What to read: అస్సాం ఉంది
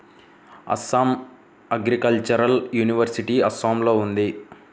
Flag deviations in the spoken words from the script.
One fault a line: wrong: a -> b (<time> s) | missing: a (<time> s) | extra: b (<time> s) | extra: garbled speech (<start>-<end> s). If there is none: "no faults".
extra: అగ్రికల్చరల్ యూనివర్సిటీ అస్సాంలో (1.7 s)